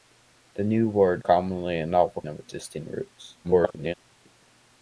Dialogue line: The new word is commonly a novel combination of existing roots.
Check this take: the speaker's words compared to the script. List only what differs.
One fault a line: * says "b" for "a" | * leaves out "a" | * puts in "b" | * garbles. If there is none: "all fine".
* leaves out "is"
* leaves out "combination"
* garbles